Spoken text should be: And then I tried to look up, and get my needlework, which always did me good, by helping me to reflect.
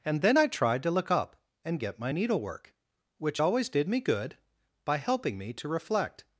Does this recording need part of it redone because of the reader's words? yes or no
no